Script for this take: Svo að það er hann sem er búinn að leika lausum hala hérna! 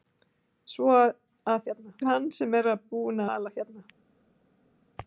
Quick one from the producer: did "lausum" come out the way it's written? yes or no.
no